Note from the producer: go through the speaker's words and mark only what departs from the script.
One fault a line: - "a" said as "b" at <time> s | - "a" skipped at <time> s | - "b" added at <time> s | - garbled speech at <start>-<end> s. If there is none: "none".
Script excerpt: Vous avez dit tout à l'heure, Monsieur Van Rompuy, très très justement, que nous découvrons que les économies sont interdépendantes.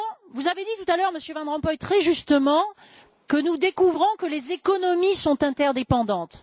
- "très" skipped at 2.0 s